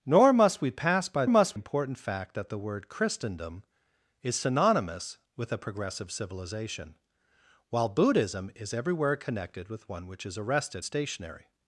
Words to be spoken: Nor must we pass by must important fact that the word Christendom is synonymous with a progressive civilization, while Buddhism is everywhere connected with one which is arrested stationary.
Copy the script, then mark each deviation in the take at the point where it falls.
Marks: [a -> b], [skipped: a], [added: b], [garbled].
Nor must we pass by must important fact that the word Christendom is synonymous with a progressive civilization, while Buddhism is everywhere connected with one which is arrested stationary.